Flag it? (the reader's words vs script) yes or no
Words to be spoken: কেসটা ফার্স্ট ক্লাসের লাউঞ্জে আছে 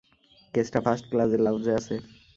no